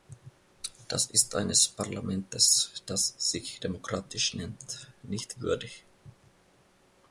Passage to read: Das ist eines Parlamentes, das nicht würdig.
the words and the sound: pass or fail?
fail